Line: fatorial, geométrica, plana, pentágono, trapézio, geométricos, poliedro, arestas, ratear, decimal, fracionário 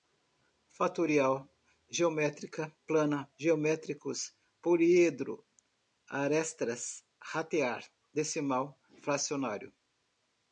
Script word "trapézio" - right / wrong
wrong